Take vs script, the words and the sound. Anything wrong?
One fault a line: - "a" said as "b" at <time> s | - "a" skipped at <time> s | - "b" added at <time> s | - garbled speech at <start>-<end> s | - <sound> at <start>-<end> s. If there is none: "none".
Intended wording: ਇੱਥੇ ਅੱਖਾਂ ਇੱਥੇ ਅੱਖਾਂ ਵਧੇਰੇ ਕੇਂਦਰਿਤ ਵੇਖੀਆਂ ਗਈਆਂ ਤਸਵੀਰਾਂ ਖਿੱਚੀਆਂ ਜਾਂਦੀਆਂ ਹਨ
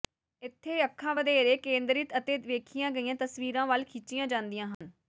- "ਇੱਥੇ ਅੱਖਾਂ" skipped at 1.1 s
- "ਅਤੇ" added at 2.2 s
- "ਵੱਲ" added at 3.7 s
- dropout at 4.7-4.8 s